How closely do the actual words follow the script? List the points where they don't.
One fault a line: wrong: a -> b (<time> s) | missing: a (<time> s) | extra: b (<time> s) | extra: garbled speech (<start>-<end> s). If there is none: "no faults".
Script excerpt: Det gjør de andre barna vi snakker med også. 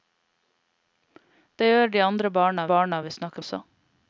extra: barna (2.7 s)
missing: med (3.4 s)